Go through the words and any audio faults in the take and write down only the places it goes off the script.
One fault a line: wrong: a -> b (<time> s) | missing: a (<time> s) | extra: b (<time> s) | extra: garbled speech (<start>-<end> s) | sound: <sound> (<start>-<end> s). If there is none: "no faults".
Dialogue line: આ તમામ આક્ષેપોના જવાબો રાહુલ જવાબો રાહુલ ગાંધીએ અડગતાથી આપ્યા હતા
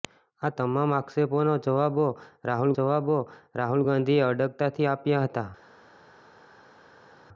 no faults